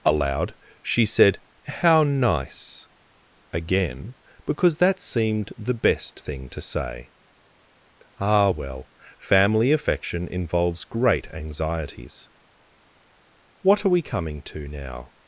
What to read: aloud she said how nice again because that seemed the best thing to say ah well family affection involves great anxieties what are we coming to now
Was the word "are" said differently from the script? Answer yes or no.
no